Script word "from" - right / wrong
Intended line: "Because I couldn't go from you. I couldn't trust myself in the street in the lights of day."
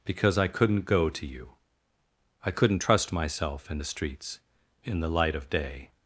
wrong